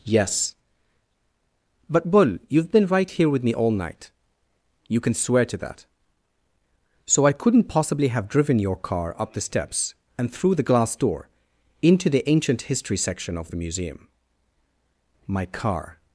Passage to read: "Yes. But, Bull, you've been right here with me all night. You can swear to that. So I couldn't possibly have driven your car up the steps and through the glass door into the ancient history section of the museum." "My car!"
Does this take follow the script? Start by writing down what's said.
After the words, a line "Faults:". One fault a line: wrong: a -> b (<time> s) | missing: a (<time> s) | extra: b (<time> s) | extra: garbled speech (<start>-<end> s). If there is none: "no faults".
"Yes. But, Bull, you've been right here with me all night. You can swear to that. So I couldn't possibly have driven your car up the steps and through the glass door into the ancient history section of the museum." "My car!"
Faults:
no faults